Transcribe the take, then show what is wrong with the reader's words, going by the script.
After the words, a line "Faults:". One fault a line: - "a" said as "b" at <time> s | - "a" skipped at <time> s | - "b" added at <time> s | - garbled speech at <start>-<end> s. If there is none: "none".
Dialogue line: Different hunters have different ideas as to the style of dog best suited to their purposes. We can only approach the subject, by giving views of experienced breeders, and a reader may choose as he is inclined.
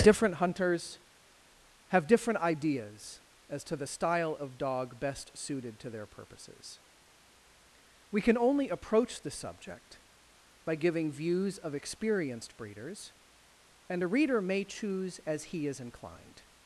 Different hunters have different ideas as to the style of dog best suited to their purposes. We can only approach the subject, by giving views of experienced breeders, and a reader may choose as he is inclined.
Faults:
none